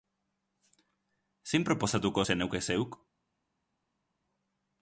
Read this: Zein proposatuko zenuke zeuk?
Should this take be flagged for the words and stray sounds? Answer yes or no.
no